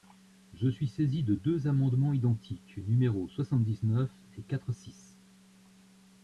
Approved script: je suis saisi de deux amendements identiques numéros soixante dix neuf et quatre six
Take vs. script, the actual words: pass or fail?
pass